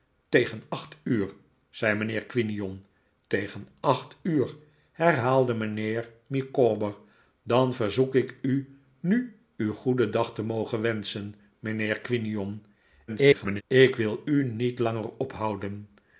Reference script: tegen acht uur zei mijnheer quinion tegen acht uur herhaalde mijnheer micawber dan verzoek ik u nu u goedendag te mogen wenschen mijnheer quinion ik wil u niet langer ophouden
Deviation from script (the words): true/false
true